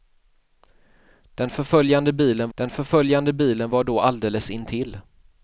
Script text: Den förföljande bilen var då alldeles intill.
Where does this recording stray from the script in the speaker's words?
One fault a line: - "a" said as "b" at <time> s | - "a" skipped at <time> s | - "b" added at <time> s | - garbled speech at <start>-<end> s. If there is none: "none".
- "den förföljande bilen" added at 2.5 s